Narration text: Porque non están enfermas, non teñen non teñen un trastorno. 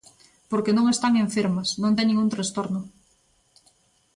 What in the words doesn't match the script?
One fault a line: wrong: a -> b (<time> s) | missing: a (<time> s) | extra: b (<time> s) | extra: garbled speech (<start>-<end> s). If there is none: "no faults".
missing: non teñen (2.2 s)